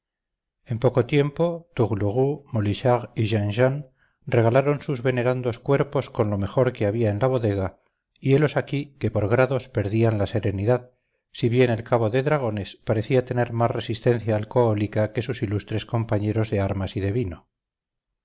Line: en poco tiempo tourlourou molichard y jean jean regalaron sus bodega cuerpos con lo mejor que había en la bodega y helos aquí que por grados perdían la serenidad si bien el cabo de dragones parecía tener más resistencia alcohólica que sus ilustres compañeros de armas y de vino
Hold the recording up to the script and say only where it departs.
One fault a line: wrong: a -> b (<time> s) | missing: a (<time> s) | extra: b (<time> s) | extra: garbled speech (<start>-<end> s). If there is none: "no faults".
wrong: bodega -> venerandos (5.1 s)